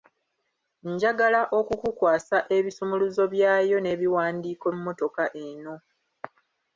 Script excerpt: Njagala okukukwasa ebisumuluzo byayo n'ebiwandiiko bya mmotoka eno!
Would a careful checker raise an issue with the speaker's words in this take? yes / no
yes